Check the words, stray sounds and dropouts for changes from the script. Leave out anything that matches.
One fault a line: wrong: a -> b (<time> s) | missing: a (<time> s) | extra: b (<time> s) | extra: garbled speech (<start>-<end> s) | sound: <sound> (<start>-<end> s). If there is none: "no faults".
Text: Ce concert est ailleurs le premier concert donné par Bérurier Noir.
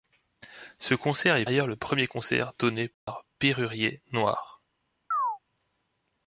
sound: dropout (2.9-3.1 s)
sound: chirp (5.1-5.4 s)